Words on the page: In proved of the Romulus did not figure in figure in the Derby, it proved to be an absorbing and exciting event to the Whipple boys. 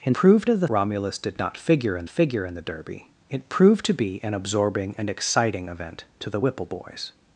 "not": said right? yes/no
yes